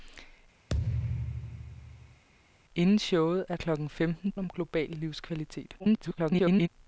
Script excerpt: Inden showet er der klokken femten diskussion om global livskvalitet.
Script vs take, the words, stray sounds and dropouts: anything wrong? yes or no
yes